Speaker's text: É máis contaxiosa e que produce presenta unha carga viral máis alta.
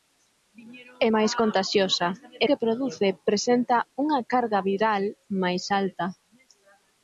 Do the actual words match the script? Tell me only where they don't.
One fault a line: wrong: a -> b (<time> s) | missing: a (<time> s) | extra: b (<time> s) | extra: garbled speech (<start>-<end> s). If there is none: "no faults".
no faults